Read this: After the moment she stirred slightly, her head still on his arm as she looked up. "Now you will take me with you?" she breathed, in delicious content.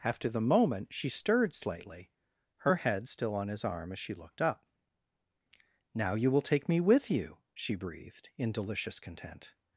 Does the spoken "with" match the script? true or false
true